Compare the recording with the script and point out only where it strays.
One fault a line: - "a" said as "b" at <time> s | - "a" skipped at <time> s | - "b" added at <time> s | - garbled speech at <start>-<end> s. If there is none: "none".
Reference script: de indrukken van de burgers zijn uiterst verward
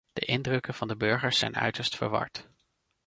none